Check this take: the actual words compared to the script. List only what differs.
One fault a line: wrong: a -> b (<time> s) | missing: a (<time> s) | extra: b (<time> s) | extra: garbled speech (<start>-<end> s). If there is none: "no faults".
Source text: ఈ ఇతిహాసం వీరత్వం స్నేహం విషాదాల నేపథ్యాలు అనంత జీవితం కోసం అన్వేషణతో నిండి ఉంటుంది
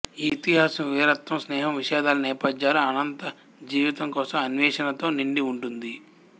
no faults